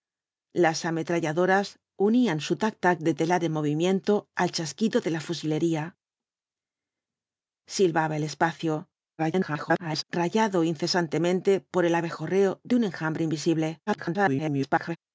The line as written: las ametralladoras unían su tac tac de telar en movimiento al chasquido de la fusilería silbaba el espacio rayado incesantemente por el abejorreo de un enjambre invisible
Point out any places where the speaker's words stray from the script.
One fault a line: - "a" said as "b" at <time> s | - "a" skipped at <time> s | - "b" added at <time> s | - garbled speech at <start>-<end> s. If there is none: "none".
- garbled speech at 9.2-10.0 s
- garbled speech at 13.9-15.0 s